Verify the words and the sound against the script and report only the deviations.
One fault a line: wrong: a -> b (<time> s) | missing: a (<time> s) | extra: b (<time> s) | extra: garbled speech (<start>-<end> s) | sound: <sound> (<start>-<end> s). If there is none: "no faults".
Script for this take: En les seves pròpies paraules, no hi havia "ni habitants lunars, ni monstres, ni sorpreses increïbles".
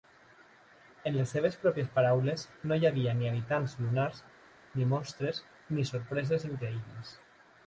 no faults